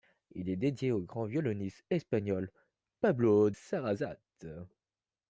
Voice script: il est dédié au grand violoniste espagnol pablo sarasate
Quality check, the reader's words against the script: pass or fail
pass